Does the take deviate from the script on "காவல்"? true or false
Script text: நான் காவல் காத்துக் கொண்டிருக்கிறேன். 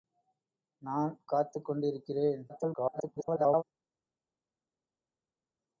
true